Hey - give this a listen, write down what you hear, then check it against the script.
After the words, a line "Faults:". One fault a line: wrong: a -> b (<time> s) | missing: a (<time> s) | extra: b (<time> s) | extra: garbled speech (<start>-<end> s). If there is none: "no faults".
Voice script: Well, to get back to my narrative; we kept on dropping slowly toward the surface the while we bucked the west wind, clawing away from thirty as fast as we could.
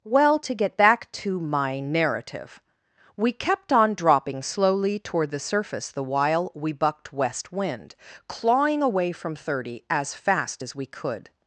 Well, to get back to my narrative; we kept on dropping slowly toward the surface the while we bucked west wind, clawing away from thirty as fast as we could.
Faults:
missing: the (7.1 s)